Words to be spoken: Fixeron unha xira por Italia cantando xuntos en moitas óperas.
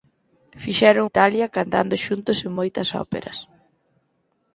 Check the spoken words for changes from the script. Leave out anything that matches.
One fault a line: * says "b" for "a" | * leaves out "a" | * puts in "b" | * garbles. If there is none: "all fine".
* leaves out "unha xira por"